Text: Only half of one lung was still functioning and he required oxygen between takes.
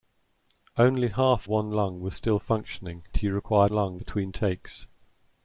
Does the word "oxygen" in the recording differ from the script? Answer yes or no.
yes